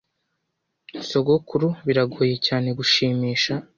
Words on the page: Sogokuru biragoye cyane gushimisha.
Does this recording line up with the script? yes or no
yes